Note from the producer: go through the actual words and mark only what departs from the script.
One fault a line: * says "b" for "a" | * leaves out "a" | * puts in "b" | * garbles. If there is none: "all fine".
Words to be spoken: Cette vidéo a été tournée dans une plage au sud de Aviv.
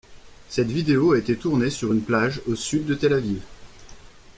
* says "sur" for "dans"
* puts in "Tel"